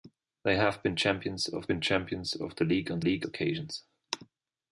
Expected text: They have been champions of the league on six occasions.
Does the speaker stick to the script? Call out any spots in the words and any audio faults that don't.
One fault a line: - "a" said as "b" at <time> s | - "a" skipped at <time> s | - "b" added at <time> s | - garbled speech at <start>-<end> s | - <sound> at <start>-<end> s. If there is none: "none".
- "been champions of" added at 1.7 s
- "six" said as "league" at 3.0 s